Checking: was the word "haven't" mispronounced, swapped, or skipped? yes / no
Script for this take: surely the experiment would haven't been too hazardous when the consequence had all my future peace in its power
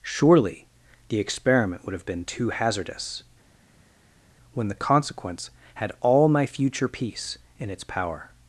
yes